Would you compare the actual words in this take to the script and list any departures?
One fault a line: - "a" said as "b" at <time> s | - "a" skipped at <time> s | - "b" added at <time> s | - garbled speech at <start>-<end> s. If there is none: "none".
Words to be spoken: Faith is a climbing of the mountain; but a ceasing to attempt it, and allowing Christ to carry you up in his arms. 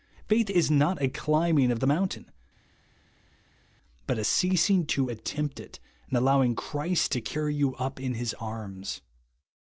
- "not" added at 0.7 s